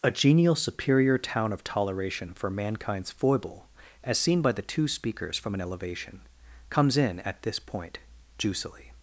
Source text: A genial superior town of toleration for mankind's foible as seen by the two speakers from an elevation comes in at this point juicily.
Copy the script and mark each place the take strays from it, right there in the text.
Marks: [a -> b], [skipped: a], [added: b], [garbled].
A genial superior town of toleration for mankind's foible as seen by the two speakers from an elevation comes in at this point juicily.